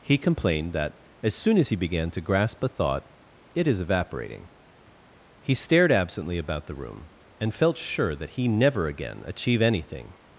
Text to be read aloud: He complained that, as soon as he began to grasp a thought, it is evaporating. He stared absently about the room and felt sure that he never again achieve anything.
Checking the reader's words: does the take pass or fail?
pass